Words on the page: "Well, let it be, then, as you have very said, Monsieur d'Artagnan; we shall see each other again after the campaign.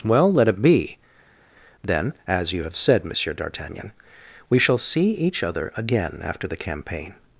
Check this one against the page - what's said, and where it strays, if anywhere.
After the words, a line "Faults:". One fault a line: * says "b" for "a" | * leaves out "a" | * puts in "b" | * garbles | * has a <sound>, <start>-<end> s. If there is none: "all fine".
"Well, let it be, then, as you have said, Monsieur d'Artagnan; we shall see each other again after the campaign.
Faults:
* leaves out "very"